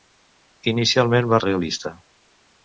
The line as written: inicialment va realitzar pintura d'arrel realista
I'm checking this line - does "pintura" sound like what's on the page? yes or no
no